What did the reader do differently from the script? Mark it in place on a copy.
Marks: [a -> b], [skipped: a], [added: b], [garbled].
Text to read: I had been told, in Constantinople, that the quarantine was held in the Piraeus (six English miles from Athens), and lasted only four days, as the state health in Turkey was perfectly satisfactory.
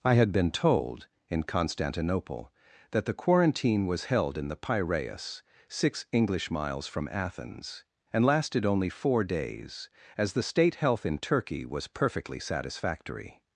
I had been told, in Constantinople, that the quarantine was held in the Piraeus (six English miles from Athens), and lasted only four days, as the state health in Turkey was perfectly satisfactory.